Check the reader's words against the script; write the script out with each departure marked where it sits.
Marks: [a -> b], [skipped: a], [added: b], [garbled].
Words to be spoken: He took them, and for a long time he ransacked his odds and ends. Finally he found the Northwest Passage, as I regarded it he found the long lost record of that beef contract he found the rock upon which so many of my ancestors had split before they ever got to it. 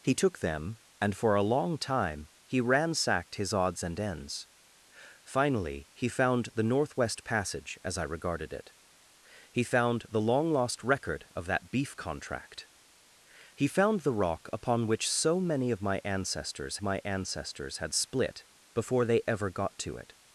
He took them, and for a long time he ransacked his odds and ends. Finally he found the Northwest Passage, as I regarded it he found the long lost record of that beef contract he found the rock upon which so many of my ancestors [added: my ancestors] had split before they ever got to it.